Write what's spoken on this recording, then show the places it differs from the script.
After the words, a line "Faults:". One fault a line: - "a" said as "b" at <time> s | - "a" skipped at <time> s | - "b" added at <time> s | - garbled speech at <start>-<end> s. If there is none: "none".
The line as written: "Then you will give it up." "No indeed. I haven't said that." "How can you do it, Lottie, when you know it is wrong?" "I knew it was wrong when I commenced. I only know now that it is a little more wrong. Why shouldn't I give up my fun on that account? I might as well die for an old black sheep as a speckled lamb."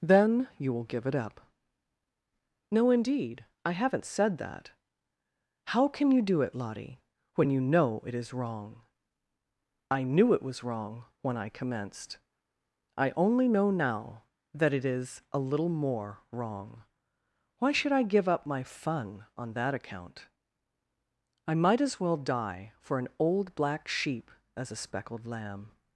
"Then you will give it up." "No indeed. I haven't said that." "How can you do it, Lottie, when you know it is wrong?" "I knew it was wrong when I commenced. I only know now that it is a little more wrong. Why should I give up my fun on that account? I might as well die for an old black sheep as a speckled lamb."
Faults:
- "shouldn't" said as "should" at 17.7 s